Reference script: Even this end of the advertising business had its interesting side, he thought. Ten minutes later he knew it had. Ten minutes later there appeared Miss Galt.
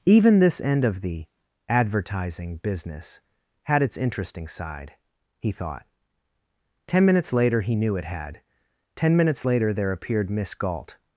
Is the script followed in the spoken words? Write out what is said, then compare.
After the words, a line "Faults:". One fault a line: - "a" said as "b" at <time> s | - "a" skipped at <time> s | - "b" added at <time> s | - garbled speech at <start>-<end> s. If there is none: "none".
Even this end of the advertising business had its interesting side, he thought. Ten minutes later he knew it had. Ten minutes later there appeared Miss Galt.
Faults:
none